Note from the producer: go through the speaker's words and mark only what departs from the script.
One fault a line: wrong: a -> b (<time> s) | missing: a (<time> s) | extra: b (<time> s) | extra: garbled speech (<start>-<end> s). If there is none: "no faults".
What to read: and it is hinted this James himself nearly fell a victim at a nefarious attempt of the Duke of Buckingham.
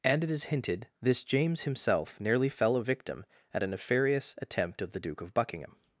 no faults